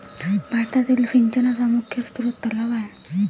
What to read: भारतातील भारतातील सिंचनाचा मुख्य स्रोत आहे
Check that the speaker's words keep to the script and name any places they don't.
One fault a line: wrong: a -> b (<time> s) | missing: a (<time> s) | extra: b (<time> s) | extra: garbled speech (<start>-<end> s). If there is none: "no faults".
missing: भारतातील (1.1 s)
extra: तलाव (2.5 s)